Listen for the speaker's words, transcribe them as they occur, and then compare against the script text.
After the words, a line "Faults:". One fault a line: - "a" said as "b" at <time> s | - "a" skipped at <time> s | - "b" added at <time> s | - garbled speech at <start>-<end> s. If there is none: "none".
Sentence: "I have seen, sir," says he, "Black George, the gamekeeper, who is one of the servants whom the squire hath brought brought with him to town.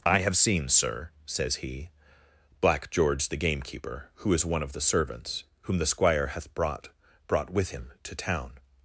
"I have seen, sir," says he, "Black George, the gamekeeper, who is one of the servants whom the squire hath brought brought with him to town.
Faults:
none